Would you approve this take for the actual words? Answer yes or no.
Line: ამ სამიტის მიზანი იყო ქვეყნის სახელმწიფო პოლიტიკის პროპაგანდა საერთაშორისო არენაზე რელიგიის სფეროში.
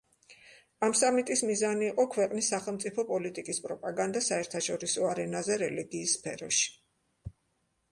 yes